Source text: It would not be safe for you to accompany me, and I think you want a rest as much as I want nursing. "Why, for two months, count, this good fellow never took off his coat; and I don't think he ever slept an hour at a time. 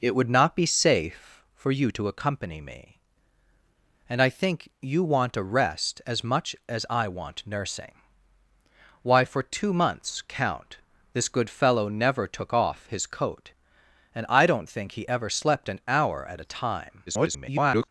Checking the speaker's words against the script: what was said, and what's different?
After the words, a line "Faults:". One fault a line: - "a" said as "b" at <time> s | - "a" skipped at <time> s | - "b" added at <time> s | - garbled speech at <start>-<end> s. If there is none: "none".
It would not be safe for you to accompany me, and I think you want a rest as much as I want nursing. "Why, for two months, count, this good fellow never took off his coat; and I don't think he ever slept an hour at a time. [garbled]
Faults:
- garbled speech at 17.1-17.9 s